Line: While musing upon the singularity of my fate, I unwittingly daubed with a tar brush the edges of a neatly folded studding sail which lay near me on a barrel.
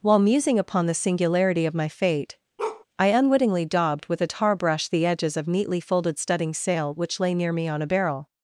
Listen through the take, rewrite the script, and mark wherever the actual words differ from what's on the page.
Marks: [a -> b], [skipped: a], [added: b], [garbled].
While musing upon the singularity of my fate, I unwittingly daubed with a tar brush the edges of [skipped: a] neatly folded studding sail which lay near me on a barrel.